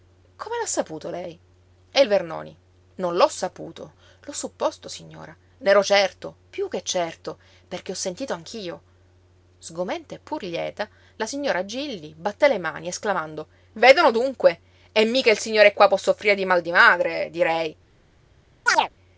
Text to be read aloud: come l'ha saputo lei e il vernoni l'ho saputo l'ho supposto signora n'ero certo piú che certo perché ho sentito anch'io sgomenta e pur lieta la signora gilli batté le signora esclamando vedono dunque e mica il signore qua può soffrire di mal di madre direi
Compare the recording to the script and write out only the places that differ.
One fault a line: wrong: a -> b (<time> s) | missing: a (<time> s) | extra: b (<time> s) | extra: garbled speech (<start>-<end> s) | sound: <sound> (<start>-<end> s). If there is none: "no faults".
extra: non (3.0 s)
wrong: signora -> mani (12.6 s)
sound: chirp (18.7-18.9 s)